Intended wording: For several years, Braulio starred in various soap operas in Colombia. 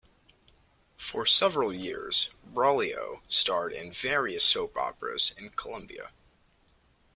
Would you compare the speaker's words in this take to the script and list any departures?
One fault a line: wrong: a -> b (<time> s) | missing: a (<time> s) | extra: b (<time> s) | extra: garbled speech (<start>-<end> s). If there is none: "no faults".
no faults